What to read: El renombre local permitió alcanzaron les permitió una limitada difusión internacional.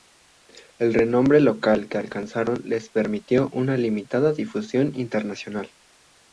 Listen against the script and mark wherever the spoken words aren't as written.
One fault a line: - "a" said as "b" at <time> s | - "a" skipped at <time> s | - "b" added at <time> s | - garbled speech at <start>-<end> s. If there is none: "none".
- "permitió" said as "que" at 1.9 s